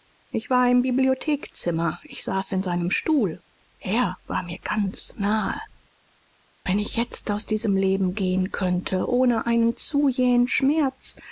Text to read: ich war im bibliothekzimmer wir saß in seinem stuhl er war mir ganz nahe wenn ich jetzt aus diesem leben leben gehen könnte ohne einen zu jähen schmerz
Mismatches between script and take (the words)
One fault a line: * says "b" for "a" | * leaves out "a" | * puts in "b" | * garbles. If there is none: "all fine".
* says "ich" for "wir"
* leaves out "leben"